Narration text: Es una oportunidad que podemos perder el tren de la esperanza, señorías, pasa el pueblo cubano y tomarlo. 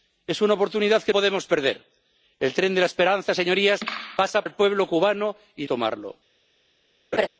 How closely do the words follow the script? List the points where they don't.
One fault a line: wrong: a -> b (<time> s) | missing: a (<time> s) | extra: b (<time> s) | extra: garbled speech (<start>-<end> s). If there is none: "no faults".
no faults